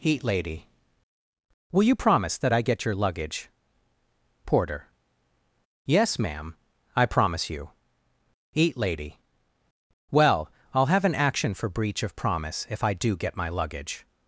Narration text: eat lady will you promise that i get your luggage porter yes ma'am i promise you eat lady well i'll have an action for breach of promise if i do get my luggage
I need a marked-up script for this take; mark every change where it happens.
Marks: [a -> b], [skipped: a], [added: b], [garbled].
eat lady will you promise that i get your luggage porter yes ma'am i promise you eat lady well i'll have an action for breach of promise if i do get my luggage